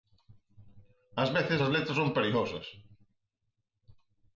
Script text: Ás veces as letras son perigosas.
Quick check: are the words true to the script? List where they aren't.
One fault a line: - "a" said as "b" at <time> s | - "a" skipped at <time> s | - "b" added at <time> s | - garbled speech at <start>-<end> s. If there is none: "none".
none